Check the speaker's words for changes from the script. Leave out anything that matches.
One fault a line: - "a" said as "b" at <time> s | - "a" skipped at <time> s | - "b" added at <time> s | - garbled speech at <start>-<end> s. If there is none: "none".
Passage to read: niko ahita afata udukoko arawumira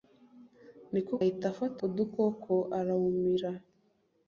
none